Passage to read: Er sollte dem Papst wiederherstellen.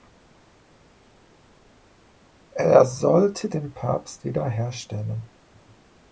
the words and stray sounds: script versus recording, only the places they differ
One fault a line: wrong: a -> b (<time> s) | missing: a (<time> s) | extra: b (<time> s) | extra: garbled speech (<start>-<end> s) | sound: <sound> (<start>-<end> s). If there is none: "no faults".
no faults